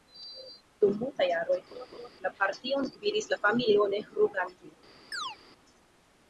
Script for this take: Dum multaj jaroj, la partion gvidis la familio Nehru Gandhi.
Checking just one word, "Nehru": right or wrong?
right